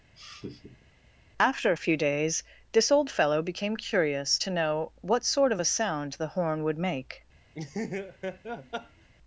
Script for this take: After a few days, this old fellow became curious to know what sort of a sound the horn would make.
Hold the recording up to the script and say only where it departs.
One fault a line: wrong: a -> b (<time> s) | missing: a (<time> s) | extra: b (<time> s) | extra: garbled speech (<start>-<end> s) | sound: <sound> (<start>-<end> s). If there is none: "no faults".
sound: laugh (0.2-0.9 s)
sound: laugh (7.5-9.1 s)